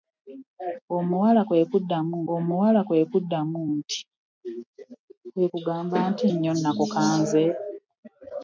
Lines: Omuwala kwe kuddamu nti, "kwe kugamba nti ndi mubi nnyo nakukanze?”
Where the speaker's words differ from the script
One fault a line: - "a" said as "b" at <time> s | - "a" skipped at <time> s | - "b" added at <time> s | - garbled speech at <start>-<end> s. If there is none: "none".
- "omuwala kwe kuddamu" added at 2.3 s
- "ndi mubi" skipped at 6.2 s